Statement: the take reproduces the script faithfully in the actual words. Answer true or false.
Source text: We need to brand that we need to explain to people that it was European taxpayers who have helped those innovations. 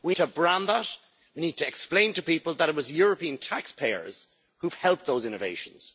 false